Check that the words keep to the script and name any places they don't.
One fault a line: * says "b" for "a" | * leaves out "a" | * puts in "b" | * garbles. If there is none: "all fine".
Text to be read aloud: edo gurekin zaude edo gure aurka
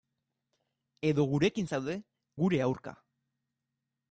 * leaves out "edo"